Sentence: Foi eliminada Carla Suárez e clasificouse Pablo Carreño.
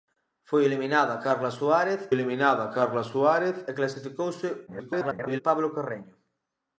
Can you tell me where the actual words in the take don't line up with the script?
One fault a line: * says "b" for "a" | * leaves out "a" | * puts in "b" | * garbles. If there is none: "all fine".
* puts in "eliminada Carla Suárez"
* garbles